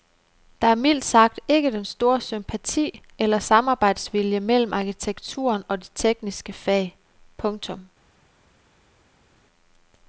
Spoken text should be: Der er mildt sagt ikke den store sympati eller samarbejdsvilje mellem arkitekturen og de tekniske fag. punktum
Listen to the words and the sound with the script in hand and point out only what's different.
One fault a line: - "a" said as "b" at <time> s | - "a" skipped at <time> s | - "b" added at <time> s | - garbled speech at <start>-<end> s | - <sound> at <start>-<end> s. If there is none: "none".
none